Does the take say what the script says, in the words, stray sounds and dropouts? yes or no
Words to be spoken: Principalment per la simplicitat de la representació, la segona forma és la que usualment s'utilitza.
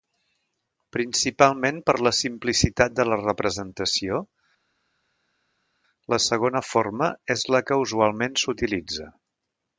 yes